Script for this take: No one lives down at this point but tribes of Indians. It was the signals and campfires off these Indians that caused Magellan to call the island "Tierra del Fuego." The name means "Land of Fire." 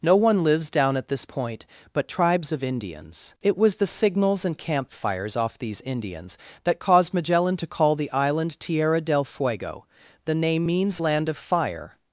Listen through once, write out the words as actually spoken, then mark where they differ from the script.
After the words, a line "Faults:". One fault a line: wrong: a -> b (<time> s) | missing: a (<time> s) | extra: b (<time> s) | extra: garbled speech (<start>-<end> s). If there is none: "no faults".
No one lives down at this point but tribes of Indians. It was the signals and campfires off these Indians that caused Magellan to call the island "Tierra del Fuego." The name means "Land of Fire."
Faults:
no faults